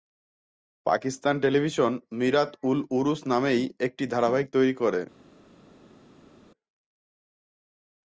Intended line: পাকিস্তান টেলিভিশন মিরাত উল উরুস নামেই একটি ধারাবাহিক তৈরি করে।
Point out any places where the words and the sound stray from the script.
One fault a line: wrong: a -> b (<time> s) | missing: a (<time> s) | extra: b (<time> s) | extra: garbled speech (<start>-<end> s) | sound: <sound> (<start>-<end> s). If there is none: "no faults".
no faults